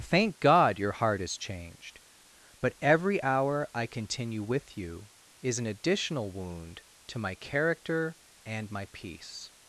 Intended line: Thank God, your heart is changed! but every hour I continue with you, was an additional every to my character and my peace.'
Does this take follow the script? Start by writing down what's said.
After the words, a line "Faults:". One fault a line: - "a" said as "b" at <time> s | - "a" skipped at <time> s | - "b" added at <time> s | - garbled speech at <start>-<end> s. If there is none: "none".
Thank God, your heart is changed! but every hour I continue with you, is an additional wound to my character and my peace.'
Faults:
- "was" said as "is" at 5.4 s
- "every" said as "wound" at 6.3 s